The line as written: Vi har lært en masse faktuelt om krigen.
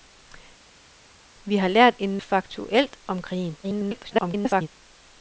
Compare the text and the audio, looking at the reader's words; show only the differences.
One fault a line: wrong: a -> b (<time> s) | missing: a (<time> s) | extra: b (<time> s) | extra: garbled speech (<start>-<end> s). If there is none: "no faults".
missing: masse (2.2 s)
extra: garbled speech (3.6-4.7 s)